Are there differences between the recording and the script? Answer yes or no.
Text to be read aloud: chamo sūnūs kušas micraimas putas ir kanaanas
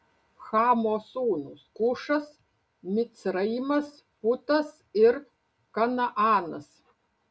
no